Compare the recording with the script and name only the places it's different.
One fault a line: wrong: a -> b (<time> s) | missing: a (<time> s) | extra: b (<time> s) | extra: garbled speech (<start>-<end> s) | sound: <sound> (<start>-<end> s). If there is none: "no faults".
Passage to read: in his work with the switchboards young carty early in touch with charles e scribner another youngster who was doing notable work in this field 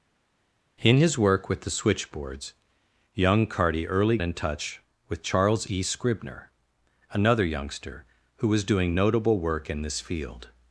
no faults